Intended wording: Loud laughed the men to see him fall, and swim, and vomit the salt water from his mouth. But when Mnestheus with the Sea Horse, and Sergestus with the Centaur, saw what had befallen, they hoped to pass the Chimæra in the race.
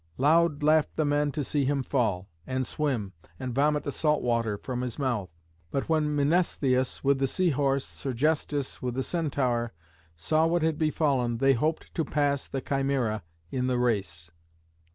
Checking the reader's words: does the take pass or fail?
fail